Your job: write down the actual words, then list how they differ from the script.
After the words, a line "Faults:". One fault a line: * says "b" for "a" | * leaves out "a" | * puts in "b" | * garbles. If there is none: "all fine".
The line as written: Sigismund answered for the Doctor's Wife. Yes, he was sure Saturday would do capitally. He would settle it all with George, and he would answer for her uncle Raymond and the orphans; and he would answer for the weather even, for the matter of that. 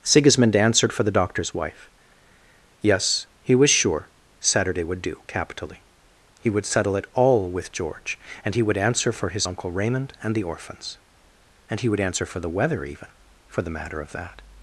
Sigismund answered for the Doctor's Wife. Yes, he was sure Saturday would do capitally. He would settle it all with George, and he would answer for his uncle Raymond and the orphans; and he would answer for the weather even, for the matter of that.
Faults:
* says "his" for "her"